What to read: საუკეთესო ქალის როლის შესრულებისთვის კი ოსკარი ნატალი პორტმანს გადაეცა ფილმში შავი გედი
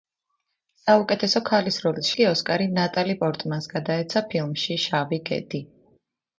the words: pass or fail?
fail